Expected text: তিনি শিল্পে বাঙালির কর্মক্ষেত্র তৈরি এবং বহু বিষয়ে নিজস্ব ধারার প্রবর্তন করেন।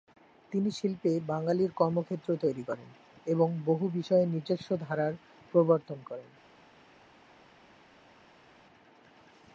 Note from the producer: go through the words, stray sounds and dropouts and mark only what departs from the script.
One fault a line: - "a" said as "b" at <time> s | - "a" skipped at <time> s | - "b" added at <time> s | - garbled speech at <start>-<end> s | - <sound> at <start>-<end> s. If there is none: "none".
- "করেন" added at 2.6 s